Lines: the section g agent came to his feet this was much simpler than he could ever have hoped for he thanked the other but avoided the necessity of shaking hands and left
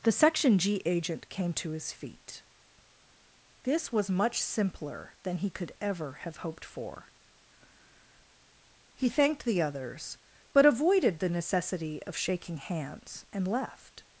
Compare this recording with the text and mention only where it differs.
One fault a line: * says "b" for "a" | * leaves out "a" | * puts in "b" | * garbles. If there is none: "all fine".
* says "others" for "other"